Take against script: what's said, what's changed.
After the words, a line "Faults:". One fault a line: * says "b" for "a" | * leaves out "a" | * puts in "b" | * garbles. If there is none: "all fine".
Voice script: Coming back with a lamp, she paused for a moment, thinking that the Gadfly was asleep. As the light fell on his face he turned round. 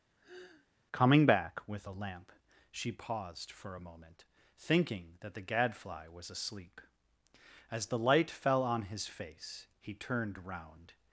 Coming back with a lamp, she paused for a moment, thinking that the Gadfly was asleep. As the light fell on his face he turned round.
Faults:
all fine